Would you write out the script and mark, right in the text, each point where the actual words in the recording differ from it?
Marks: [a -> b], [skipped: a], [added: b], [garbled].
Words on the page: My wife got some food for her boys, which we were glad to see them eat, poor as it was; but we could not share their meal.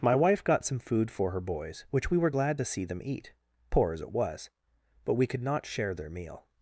My wife got some food for her boys, which we were glad to see them eat, poor as it was; but we could not share their meal.